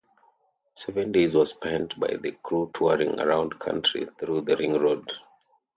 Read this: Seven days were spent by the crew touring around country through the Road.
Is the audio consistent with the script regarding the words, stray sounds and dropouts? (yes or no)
no